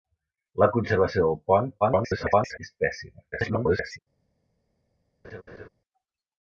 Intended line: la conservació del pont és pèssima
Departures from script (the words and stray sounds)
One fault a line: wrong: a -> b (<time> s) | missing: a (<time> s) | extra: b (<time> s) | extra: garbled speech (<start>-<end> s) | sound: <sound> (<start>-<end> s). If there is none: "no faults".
extra: garbled speech (1.8-2.6 s)
extra: garbled speech (3.3-4.0 s)
sound: laugh (5.2-5.7 s)